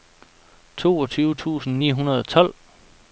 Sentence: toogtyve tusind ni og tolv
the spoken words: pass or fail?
fail